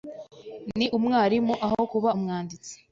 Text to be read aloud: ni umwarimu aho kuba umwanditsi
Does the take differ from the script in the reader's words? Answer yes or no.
no